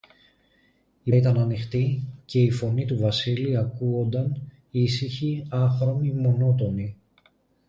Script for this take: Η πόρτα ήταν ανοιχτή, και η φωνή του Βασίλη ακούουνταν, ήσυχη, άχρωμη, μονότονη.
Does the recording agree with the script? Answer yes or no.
no